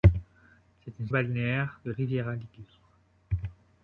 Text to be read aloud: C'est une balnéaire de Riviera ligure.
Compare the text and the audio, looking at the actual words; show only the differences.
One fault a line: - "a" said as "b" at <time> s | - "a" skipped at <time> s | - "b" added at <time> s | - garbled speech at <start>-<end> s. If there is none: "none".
none